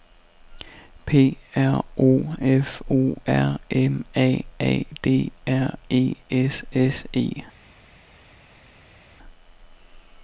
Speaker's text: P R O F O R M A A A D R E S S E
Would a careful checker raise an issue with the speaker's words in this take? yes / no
yes